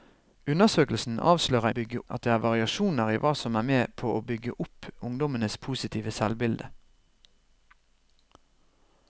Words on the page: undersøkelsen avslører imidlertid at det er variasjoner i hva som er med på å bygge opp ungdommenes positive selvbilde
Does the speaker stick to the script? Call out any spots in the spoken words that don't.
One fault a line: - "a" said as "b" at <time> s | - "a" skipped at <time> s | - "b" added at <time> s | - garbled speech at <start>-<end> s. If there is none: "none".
- "imidlertid" said as "bygge" at 1.8 s